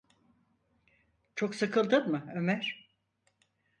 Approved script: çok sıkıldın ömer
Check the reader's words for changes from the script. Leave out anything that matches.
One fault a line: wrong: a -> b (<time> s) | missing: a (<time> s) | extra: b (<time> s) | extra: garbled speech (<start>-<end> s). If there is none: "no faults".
extra: mı (2.1 s)